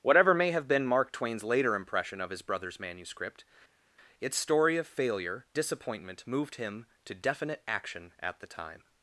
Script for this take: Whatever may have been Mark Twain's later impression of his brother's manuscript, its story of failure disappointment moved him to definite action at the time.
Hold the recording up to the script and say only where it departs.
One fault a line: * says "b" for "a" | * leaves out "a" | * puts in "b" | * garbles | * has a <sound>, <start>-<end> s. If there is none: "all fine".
all fine